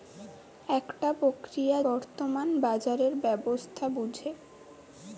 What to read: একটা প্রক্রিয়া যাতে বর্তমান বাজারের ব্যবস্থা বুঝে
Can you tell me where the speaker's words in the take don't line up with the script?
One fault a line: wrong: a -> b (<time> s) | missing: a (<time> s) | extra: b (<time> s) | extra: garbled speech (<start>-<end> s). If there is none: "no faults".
missing: যাতে (1.8 s)